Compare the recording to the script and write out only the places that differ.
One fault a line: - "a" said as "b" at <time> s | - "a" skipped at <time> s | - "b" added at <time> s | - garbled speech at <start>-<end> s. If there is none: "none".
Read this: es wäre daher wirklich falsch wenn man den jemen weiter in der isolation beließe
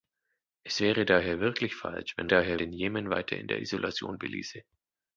- "man" said as "daher" at 2.3 s